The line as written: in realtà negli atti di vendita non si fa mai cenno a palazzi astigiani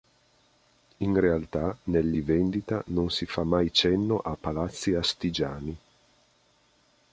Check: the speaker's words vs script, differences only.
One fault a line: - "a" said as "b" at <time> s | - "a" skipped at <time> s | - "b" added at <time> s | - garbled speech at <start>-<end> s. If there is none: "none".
- "atti" skipped at 2.2 s